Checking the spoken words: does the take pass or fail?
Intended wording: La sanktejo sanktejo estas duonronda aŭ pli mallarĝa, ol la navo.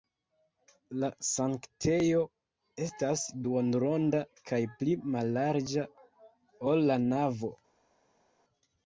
fail